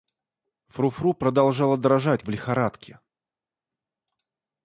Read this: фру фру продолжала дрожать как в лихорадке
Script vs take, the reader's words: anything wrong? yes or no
yes